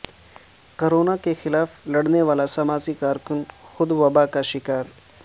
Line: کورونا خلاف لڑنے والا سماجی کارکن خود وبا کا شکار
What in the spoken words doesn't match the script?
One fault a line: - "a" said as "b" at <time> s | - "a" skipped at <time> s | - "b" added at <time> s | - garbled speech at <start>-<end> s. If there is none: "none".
- "کے" added at 1.2 s